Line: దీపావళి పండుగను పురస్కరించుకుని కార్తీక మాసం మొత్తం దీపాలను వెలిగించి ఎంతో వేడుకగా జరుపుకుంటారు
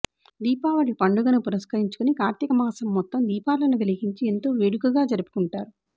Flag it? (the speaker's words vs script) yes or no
no